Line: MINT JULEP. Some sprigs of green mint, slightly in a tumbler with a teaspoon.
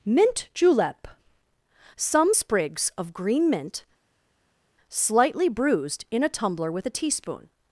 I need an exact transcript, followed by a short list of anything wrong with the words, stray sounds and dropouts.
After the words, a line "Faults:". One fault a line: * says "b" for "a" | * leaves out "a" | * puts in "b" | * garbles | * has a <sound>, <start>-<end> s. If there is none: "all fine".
MINT JULEP. Some sprigs of green mint, slightly bruised in a tumbler with a teaspoon.
Faults:
* puts in "bruised"